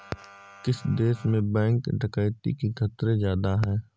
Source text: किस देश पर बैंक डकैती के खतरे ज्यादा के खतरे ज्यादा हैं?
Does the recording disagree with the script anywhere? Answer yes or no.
yes